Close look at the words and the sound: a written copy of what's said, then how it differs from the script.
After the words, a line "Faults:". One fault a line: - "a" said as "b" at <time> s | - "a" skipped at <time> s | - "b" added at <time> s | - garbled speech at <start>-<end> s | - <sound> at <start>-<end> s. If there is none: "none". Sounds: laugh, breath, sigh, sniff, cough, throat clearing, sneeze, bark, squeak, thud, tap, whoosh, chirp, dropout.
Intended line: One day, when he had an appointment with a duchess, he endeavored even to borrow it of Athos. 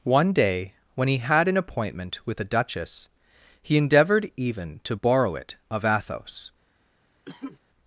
One day, when he had an appointment with a duchess, he endeavored even to borrow it of Athos.
Faults:
- cough at 7.2-7.6 s